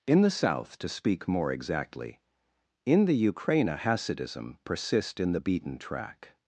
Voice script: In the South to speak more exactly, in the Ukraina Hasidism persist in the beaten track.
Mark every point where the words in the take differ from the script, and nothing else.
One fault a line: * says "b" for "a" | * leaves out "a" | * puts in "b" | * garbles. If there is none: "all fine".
all fine